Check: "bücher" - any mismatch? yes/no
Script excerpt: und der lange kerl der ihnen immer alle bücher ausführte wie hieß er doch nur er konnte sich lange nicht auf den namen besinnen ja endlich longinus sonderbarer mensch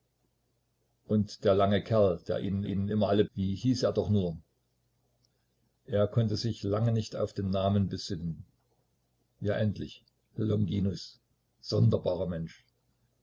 yes